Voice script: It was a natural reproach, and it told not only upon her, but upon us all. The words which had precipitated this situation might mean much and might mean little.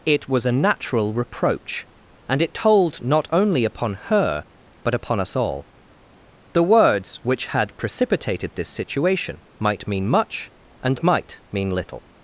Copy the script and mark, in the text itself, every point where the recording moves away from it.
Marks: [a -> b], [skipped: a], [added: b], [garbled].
It was a natural reproach, and it told not only upon her, but upon us all. The words which had precipitated this situation might mean much and might mean little.